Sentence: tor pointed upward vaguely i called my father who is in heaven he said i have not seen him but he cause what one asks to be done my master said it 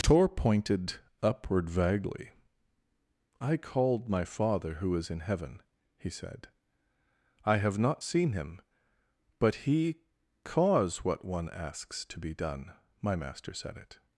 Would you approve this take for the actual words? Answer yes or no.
yes